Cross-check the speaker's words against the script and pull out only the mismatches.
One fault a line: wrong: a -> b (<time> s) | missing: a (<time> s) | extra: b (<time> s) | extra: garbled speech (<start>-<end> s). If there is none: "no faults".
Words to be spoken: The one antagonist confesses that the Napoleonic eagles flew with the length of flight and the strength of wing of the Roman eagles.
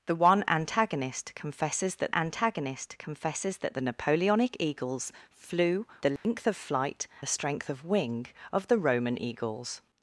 extra: antagonist confesses that (2.1 s)
missing: with (5.9 s)
missing: and (7.1 s)